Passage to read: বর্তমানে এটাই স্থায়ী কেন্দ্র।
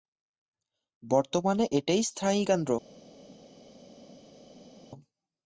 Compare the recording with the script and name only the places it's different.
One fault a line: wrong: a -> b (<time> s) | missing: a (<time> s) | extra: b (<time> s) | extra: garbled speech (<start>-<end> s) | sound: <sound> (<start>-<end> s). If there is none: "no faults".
no faults